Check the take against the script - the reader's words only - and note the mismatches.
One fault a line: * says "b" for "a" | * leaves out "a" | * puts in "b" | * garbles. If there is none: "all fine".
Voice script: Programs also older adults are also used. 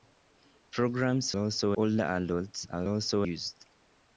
all fine